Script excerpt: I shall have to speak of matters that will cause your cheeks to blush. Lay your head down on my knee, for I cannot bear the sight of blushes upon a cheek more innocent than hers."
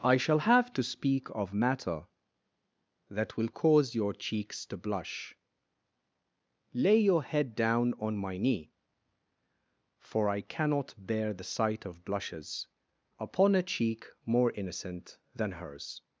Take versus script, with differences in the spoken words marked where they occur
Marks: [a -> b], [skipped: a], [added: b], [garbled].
I shall have to speak of [matters -> matter] that will cause your cheeks to blush. Lay your head down on my knee, for I cannot bear the sight of blushes upon a cheek more innocent than hers."